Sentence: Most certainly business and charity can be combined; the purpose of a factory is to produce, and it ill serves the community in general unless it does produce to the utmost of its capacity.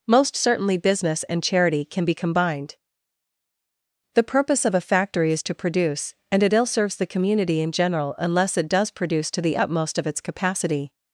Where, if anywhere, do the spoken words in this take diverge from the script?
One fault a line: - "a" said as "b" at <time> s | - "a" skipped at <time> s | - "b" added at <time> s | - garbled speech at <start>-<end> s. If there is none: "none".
none